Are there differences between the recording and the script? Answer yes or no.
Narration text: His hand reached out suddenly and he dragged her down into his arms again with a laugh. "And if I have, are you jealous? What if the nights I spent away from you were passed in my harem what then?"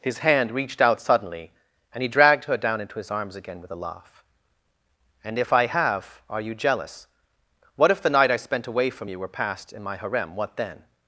yes